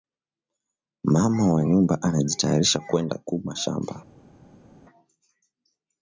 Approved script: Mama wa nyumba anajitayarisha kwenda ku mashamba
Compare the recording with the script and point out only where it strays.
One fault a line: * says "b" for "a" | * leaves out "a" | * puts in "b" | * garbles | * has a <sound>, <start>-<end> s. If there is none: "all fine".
all fine